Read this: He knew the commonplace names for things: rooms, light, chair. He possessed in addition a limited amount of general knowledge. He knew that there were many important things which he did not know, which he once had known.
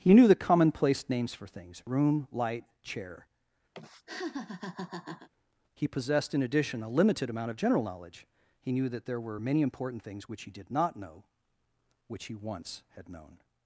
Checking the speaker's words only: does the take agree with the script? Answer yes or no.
no